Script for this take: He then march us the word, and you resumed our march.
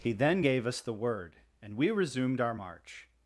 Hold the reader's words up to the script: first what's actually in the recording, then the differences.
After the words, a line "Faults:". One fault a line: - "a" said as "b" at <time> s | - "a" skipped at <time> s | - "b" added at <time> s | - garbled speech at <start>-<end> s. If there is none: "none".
He then gave us the word, and we resumed our march.
Faults:
- "march" said as "gave" at 0.4 s
- "you" said as "we" at 1.8 s